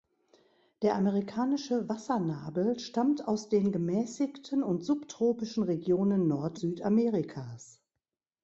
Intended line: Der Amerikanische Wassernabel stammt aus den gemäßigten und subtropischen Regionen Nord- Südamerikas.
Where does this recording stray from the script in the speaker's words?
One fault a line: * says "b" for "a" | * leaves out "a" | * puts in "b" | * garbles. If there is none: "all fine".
all fine